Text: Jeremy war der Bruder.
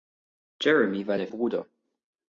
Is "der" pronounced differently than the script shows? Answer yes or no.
no